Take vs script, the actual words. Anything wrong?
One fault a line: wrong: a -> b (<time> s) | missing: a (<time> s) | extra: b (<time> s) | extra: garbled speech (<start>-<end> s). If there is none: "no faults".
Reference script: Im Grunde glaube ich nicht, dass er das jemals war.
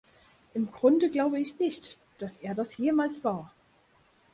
no faults